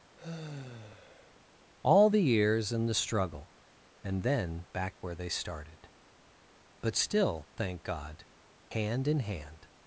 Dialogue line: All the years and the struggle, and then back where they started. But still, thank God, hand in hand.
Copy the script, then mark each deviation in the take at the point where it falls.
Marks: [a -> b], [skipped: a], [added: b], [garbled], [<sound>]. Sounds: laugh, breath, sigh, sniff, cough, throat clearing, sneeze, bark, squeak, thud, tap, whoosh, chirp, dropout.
[sigh] All the years and the struggle, and then back where they started. But still, thank God, hand in hand.